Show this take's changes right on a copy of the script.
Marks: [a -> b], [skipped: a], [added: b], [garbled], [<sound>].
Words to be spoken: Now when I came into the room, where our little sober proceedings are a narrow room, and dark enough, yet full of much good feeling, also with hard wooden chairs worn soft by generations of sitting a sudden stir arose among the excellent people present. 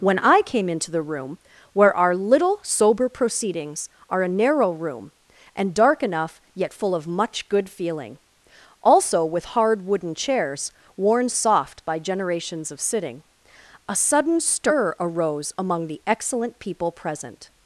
[skipped: Now] when I came into the room, where our little sober proceedings are a narrow room, and dark enough, yet full of much good feeling, also with hard wooden chairs worn soft by generations of sitting a sudden stir arose among the excellent people present.